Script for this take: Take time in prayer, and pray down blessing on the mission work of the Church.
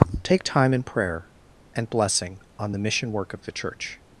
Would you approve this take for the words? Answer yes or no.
no